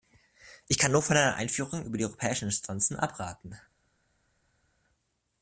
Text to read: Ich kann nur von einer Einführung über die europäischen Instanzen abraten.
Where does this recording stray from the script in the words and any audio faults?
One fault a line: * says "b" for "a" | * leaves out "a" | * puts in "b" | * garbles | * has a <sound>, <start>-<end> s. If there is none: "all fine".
all fine